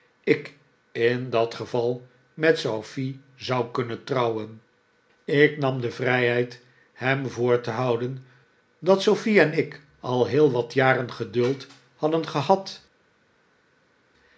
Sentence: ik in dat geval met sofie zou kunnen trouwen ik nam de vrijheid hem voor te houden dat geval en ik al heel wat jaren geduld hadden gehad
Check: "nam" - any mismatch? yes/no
no